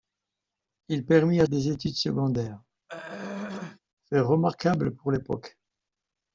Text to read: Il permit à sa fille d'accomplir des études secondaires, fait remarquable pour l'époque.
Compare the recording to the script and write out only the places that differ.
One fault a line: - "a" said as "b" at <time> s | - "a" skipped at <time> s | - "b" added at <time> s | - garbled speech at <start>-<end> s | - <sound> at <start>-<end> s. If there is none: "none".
- "sa fille d'accomplir" skipped at 1.4 s
- throat clearing at 2.9-3.8 s